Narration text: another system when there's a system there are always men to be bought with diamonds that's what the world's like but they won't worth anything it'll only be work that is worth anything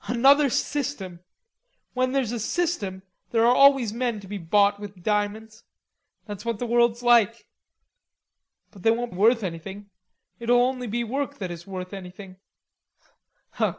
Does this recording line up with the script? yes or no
yes